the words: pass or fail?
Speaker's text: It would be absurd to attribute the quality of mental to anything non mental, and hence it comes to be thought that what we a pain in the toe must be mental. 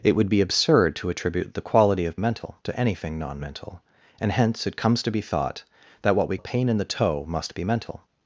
pass